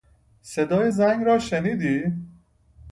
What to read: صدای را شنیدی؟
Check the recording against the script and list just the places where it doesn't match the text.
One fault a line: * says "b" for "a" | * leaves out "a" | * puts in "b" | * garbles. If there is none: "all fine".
* puts in "زنگ"